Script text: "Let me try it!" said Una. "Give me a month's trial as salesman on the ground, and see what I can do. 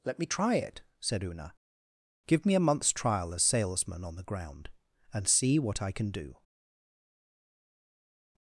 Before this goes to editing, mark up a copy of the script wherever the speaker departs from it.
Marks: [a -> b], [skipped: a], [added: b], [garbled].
"Let me try it!" said Una. "Give me a month's trial as salesman on the ground, and see what I can do.